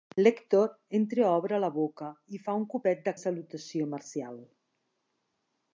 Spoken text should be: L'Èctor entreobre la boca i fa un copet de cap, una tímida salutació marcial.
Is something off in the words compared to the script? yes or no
yes